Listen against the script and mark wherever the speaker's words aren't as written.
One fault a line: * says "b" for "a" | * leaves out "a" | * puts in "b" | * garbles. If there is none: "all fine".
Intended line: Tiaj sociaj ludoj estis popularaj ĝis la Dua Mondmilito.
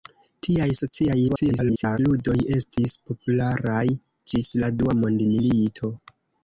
* garbles